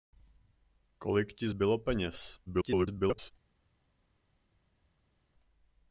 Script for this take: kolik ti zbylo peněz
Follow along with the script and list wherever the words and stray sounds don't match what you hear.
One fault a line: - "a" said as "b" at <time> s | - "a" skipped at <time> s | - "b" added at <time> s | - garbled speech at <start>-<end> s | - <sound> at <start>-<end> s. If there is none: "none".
- garbled speech at 2.5-3.3 s